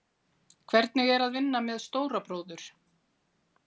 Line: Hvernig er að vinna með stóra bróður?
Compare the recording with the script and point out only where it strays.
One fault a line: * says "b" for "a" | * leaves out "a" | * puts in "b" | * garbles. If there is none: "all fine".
all fine